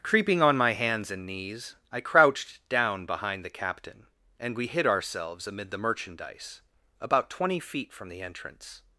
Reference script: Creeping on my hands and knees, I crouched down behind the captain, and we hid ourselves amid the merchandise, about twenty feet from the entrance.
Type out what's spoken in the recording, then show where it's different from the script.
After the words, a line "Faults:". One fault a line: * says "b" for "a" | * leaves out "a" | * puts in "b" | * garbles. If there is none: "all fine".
Creeping on my hands and knees, I crouched down behind the captain, and we hid ourselves amid the merchandise, about twenty feet from the entrance.
Faults:
all fine